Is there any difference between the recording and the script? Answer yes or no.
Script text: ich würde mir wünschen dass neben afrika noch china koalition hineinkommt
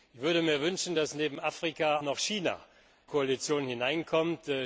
no